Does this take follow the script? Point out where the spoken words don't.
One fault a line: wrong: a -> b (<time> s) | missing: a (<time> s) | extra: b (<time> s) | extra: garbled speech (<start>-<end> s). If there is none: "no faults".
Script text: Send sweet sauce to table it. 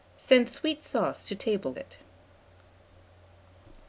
no faults